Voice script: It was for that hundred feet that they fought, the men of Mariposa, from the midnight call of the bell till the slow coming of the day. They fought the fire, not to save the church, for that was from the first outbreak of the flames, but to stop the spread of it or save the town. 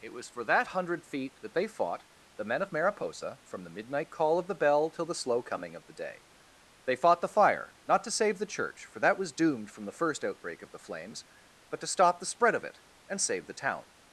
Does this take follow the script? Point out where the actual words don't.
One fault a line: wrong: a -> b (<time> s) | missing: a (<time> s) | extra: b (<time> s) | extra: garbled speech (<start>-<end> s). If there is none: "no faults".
extra: doomed (9.3 s)
wrong: or -> and (13.1 s)